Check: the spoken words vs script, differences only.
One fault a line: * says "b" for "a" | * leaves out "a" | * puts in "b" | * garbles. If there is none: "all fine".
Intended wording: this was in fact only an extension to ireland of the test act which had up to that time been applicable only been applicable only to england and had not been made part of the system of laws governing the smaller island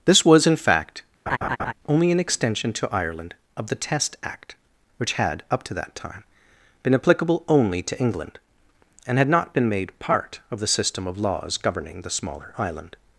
* leaves out "been applicable only"